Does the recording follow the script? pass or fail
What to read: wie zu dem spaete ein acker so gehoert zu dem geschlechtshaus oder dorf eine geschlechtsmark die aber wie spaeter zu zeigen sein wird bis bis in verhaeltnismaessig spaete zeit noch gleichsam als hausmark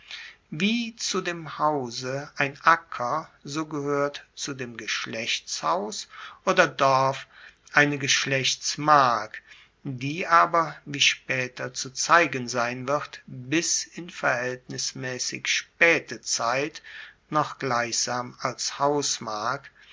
fail